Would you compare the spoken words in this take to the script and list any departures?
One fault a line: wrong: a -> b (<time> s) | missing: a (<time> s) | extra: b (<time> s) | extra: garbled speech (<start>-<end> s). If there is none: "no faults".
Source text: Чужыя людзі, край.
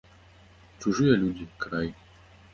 no faults